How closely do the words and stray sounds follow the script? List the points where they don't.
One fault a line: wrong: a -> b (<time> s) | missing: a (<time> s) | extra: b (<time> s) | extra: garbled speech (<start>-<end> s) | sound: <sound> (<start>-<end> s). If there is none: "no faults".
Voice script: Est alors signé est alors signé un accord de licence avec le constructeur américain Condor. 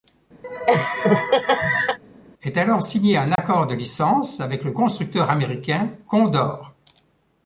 sound: laugh (0.4-2.0 s)
missing: est alors signé (3.2 s)
sound: dropout (3.4-3.4 s)